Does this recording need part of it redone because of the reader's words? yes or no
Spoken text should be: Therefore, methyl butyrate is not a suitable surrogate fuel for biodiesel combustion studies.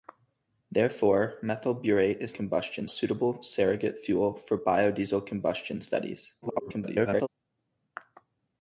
yes